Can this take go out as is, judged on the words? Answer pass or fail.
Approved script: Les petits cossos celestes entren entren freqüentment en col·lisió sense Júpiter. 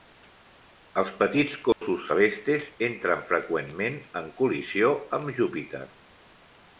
fail